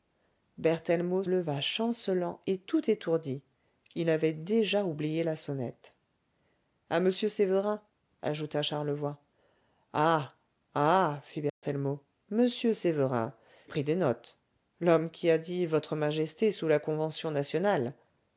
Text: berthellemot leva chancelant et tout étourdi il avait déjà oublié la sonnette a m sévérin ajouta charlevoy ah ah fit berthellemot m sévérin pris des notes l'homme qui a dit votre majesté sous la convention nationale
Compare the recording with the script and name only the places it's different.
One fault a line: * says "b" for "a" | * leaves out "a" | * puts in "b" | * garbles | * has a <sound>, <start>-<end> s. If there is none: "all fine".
* has a dropout, 11.5-11.6 s